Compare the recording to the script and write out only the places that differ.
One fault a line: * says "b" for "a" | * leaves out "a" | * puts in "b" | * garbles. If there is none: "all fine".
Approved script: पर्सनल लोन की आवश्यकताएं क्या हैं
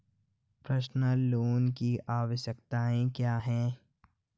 all fine